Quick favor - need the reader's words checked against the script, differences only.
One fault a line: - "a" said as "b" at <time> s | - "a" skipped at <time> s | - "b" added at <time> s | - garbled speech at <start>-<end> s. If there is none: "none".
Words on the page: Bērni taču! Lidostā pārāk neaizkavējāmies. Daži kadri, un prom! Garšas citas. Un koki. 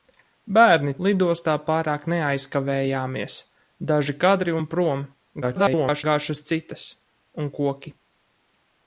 - "taču" skipped at 0.9 s
- garbled speech at 5.4-6.0 s